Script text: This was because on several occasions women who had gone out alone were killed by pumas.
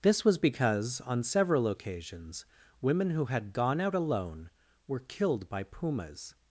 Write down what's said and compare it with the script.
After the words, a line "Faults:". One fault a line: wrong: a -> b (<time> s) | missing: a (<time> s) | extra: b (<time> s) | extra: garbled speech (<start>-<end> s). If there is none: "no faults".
This was because on several occasions women who had gone out alone were killed by pumas.
Faults:
no faults